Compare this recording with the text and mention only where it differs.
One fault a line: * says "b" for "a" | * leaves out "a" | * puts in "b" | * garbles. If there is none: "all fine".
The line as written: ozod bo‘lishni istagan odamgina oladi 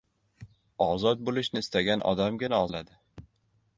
all fine